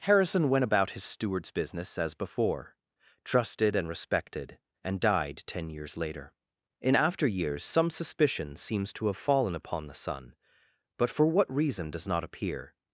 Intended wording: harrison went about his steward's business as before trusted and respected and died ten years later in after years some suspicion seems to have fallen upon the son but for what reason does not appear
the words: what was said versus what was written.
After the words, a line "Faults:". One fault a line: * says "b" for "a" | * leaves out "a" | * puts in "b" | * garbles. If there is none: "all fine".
harrison went about his steward's business as before trusted and respected and died ten years later in after years some suspicion seems to have fallen upon the son but for what reason does not appear
Faults:
all fine